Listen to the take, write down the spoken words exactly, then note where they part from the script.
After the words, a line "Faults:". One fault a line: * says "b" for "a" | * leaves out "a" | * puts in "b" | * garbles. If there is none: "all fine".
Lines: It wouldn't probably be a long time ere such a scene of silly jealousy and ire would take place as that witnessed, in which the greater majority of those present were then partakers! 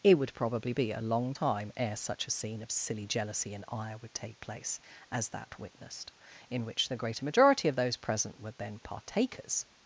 It would probably be a long time ere such a scene of silly jealousy and ire would take place as that witnessed, in which the greater majority of those present were then partakers!
Faults:
* says "would" for "wouldn't"